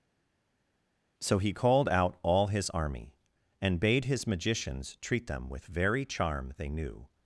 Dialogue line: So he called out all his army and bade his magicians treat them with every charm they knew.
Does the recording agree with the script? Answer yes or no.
no